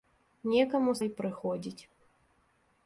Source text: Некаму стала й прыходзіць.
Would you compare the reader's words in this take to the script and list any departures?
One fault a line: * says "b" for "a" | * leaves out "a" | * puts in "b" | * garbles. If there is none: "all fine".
* leaves out "стала"